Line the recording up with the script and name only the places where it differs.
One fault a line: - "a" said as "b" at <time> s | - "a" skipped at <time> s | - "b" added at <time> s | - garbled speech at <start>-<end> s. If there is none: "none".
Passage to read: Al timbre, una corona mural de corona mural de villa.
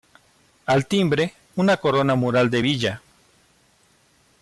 - "corona mural de" skipped at 2.6 s